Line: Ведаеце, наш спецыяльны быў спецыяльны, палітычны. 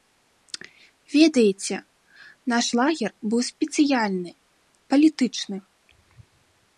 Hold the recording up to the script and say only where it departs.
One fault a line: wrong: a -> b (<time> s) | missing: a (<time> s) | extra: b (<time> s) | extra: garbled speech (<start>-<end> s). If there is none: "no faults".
wrong: спецыяльны -> лагер (2.8 s)